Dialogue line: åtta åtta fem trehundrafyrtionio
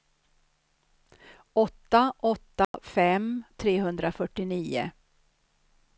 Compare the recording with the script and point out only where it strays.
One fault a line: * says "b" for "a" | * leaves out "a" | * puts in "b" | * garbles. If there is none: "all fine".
all fine